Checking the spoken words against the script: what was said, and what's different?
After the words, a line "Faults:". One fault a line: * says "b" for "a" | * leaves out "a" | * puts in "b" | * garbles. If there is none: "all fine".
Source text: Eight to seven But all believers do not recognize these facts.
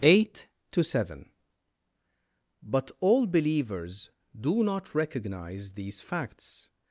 Eight to seven But all believers do not recognize these facts.
Faults:
all fine